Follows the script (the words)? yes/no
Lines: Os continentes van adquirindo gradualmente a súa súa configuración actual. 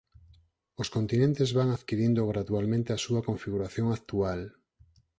no